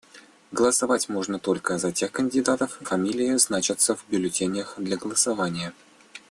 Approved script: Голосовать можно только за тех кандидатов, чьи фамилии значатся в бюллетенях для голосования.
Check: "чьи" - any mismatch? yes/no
yes